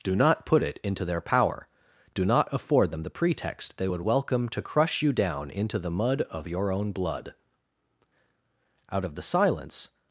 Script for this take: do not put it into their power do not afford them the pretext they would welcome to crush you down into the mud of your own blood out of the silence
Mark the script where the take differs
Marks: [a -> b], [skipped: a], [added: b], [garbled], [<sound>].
do not put it into their power do not afford them the pretext they would welcome to crush you down into the mud of your own blood out of the silence